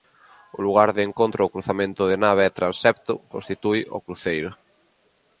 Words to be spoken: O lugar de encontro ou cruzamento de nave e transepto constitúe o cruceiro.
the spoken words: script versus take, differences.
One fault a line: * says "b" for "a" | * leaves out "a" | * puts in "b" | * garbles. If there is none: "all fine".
all fine